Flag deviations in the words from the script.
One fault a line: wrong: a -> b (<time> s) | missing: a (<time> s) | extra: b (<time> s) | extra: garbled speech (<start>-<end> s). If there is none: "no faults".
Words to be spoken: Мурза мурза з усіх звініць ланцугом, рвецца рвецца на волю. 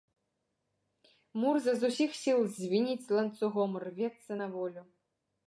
missing: мурза (1.8 s)
extra: сіл (2.2 s)
missing: рвецца (4.3 s)